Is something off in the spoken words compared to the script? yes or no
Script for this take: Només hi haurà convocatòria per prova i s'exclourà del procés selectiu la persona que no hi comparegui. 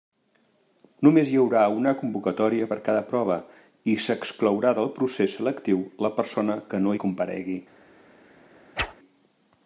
yes